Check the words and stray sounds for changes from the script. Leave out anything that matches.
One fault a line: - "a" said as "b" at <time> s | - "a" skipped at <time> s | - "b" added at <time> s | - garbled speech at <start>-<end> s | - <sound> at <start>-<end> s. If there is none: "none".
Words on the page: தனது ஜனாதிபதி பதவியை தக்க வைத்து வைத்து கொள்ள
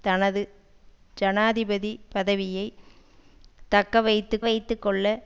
none